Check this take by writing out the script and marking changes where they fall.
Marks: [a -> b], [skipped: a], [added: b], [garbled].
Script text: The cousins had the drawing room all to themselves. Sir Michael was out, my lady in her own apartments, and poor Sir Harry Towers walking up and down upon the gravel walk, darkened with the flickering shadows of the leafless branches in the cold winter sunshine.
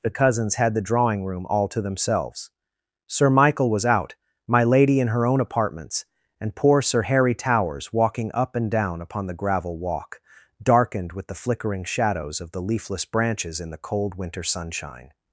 The cousins had the drawing room all to themselves. Sir Michael was out, my lady in her own apartments, and poor Sir Harry Towers walking up and down upon the gravel walk, darkened with the flickering shadows of the leafless branches in the cold winter sunshine.